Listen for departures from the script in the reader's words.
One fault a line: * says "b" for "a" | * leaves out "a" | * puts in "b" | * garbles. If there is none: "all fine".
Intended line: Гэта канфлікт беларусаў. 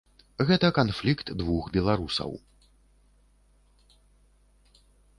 * puts in "двух"